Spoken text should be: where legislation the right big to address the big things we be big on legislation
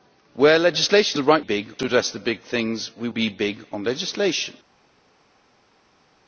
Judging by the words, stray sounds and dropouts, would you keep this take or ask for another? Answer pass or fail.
pass